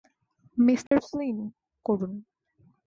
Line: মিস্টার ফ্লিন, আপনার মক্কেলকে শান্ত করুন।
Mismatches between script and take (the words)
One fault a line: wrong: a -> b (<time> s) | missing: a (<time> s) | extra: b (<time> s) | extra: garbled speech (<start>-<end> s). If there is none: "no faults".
missing: আপনার মক্কেলকে শান্ত (1.4 s)